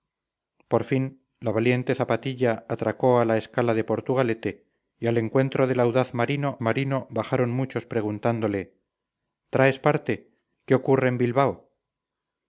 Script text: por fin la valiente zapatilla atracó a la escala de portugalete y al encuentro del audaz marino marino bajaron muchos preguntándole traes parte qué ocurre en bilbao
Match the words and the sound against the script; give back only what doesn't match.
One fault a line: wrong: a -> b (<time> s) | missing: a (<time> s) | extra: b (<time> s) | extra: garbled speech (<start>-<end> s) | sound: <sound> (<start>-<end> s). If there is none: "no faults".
no faults